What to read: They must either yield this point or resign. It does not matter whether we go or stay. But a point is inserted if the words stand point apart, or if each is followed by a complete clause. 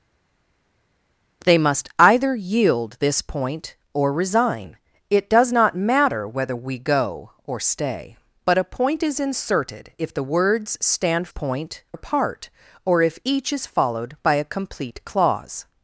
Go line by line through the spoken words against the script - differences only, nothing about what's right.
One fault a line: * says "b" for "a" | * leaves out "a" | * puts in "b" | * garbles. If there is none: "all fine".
all fine